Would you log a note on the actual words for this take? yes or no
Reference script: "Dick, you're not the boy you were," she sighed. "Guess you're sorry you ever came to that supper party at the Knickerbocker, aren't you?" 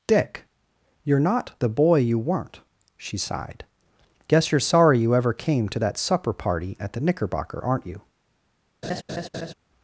yes